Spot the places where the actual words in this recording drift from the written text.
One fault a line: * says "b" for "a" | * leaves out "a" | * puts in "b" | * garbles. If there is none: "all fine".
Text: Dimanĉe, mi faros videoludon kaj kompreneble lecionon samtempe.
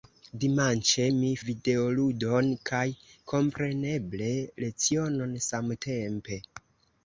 * leaves out "faros"